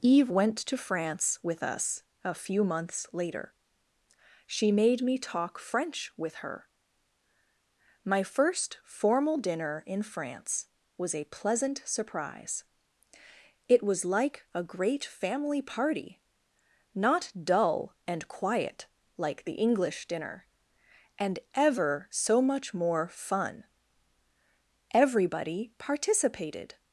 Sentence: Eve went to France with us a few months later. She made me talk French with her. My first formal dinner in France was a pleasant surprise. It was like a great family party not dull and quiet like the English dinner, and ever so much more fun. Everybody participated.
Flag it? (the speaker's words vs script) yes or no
no